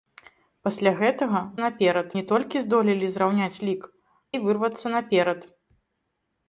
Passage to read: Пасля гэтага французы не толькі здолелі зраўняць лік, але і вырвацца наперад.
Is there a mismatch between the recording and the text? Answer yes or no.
yes